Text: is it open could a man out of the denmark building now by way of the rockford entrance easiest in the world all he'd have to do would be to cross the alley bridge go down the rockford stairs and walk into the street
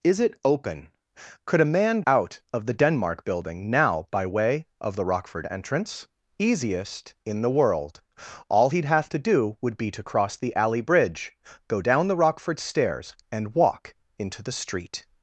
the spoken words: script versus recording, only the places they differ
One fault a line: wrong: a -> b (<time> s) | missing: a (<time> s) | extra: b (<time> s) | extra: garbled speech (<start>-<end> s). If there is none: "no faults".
no faults